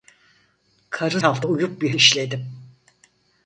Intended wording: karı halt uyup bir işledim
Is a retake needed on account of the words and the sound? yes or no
no